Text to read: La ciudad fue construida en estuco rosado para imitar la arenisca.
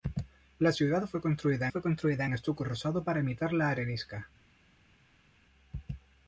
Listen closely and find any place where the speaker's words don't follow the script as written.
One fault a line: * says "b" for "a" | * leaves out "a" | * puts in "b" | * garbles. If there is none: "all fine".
* puts in "fue construida"